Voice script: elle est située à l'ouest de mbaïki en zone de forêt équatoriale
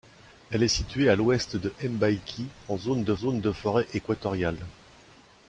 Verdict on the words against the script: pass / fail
fail